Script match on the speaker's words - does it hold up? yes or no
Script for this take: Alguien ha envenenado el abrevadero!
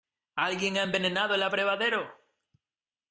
yes